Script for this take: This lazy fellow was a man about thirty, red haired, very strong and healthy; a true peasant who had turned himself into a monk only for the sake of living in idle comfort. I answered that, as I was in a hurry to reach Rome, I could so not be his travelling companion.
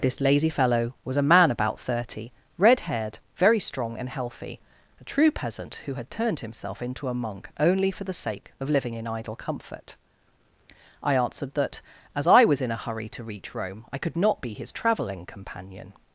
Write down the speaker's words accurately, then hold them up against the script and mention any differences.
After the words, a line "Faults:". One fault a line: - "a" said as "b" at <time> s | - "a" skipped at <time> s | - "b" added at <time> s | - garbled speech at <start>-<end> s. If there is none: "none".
This lazy fellow was a man about thirty, red haired, very strong and healthy; a true peasant who had turned himself into a monk only for the sake of living in idle comfort. I answered that, as I was in a hurry to reach Rome, I could not be his travelling companion.
Faults:
- "so" skipped at 14.2 s